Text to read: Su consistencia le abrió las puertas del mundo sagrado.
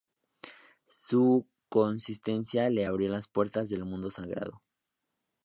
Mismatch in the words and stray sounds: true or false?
false